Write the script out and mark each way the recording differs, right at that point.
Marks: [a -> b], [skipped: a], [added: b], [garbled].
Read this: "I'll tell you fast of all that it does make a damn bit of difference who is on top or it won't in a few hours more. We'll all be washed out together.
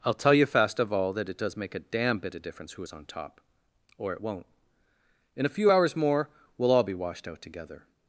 "I'll tell you fast of all that it does make a damn bit of difference who is on top or it won't in a few hours more. We'll all be washed out together.